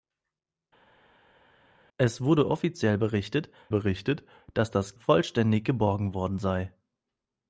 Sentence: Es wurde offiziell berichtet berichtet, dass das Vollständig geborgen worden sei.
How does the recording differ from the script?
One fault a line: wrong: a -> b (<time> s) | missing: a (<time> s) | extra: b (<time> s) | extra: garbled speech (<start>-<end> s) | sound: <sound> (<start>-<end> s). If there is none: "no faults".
no faults